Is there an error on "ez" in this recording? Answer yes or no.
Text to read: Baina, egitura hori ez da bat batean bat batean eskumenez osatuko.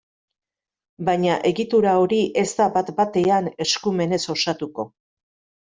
no